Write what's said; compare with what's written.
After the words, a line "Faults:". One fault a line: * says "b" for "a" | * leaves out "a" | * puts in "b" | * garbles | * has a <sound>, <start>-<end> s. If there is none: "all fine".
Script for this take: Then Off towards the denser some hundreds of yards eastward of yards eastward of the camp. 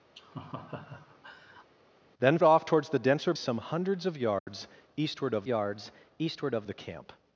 Then Off towards the denser some hundreds of yards eastward of yards eastward of the camp.
Faults:
* has a laugh, 0.1-1.7 s
* has a dropout, 4.4-4.5 s